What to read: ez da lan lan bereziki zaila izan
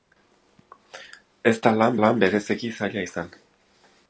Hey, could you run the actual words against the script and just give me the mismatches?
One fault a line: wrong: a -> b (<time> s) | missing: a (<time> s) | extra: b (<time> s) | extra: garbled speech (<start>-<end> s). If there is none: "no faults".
no faults